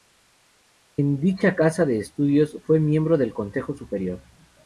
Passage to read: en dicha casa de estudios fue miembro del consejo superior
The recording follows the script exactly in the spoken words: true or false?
true